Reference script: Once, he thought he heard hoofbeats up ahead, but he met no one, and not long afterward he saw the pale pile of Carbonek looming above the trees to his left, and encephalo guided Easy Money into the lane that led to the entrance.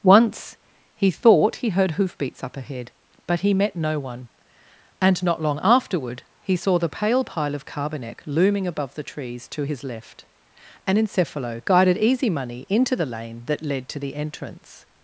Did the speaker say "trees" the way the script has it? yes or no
yes